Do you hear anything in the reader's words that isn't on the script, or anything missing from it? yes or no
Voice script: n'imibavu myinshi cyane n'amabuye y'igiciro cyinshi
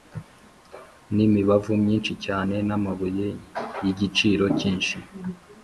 no